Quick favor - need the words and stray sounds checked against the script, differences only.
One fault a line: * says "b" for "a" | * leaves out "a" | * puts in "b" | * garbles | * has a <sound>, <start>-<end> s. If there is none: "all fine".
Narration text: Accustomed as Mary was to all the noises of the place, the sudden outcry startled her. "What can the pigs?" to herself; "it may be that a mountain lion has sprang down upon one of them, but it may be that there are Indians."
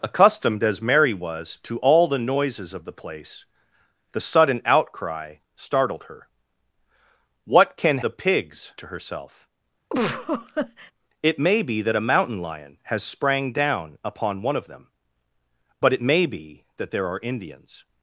* has a laugh, 9.9-10.9 s